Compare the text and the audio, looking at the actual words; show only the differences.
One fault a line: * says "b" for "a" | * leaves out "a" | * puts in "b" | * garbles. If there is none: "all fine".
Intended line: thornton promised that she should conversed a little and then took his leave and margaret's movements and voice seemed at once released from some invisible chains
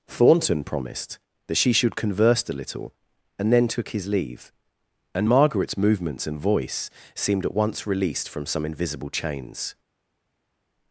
* says "converse" for "conversed"